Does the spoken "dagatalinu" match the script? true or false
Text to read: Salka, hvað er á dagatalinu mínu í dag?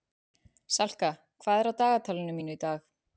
true